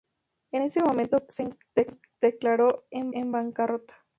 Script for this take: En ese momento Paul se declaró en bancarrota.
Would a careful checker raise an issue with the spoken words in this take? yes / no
yes